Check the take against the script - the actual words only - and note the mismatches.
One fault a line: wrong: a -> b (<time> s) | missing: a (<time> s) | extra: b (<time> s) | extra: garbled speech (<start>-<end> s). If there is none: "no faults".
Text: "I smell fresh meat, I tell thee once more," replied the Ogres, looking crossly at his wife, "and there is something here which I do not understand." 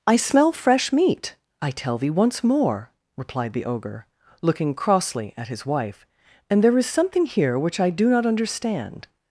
wrong: Ogres -> Ogre (3.6 s)